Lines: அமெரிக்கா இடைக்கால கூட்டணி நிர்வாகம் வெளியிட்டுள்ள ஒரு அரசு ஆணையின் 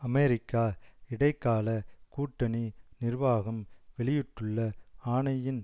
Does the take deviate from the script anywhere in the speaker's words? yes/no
yes